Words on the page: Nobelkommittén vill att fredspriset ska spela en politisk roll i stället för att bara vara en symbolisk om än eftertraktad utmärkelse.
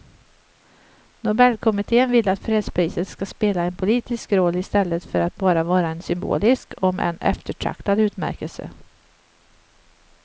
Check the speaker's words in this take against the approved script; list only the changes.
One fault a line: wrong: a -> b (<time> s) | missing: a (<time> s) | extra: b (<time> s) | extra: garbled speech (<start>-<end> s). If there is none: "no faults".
no faults